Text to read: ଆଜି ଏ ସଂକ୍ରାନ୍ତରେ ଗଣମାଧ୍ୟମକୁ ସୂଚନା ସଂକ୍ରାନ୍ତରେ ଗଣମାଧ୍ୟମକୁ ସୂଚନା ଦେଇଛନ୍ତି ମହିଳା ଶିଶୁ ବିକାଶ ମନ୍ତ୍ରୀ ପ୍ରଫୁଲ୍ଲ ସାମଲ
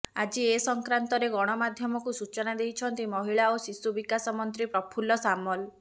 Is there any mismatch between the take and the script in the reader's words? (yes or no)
yes